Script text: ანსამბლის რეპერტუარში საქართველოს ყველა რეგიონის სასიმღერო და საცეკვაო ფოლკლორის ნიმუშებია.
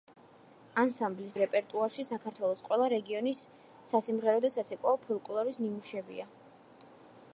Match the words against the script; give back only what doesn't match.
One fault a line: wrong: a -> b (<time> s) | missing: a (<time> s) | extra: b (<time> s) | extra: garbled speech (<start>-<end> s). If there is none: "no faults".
no faults